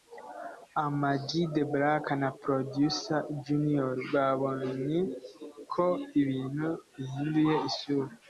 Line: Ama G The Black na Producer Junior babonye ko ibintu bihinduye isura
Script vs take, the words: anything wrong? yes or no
no